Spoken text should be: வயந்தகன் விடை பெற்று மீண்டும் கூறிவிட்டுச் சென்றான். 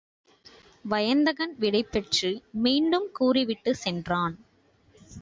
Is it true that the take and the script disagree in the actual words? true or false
false